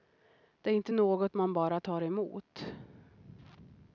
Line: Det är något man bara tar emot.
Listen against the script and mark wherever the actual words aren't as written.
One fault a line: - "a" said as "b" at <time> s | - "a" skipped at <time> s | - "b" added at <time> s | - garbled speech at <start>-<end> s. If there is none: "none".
- "inte" added at 0.7 s